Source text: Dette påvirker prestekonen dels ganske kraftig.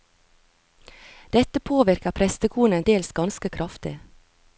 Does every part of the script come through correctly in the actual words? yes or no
yes